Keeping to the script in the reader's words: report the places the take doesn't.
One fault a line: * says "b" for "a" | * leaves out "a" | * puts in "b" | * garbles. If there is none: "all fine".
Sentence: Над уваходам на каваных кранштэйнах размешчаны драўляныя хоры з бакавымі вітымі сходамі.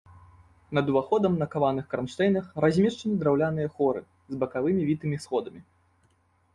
all fine